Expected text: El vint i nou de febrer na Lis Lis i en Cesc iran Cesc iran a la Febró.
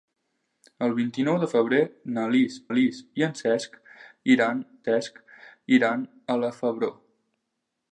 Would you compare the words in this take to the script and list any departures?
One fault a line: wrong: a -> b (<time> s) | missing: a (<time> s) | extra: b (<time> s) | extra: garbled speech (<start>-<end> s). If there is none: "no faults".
no faults